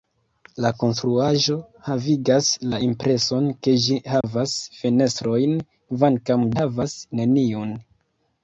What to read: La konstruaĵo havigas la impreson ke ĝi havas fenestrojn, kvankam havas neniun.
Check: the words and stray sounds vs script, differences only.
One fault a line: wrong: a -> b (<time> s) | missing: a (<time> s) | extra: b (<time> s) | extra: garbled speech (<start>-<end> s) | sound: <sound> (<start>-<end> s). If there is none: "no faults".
sound: dropout (4.2-4.2 s)